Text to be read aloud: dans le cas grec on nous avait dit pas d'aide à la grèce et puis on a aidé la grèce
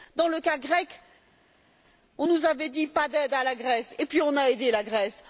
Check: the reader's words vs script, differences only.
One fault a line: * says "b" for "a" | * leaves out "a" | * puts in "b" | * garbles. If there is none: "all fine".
all fine